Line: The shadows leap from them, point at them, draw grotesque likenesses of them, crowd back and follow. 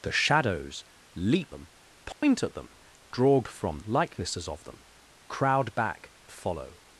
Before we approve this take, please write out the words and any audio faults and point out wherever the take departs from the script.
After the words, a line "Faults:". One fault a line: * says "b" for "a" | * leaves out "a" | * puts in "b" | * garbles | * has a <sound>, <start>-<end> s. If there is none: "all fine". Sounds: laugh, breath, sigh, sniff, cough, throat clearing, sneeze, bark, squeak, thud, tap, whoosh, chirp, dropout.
The shadows leap them, point at them, draw from likenesses of them, crowd back follow.
Faults:
* leaves out "from"
* has a dropout, 2.1-2.2 s
* says "from" for "grotesque"
* leaves out "and"